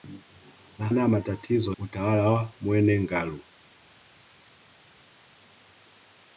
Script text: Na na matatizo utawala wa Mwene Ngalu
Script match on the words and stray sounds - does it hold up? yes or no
yes